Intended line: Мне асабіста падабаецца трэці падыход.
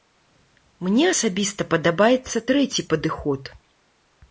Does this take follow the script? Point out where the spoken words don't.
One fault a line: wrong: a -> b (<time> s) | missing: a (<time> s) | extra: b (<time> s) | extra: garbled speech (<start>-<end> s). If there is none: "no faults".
no faults